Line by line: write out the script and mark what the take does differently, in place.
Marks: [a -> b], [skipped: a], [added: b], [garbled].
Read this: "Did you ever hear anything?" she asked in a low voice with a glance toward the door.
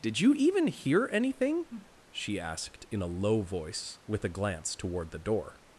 "Did you [ever -> even] hear anything?" she asked in a low voice with a glance toward the door.